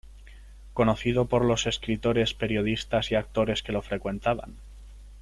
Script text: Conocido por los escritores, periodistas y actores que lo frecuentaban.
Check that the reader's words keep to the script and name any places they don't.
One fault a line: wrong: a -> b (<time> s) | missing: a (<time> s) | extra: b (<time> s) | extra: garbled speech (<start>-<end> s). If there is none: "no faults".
no faults